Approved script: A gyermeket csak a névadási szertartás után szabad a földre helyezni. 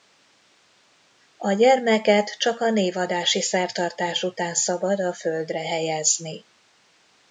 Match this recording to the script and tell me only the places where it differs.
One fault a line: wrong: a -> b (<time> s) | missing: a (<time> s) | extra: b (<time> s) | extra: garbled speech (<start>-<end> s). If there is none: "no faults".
no faults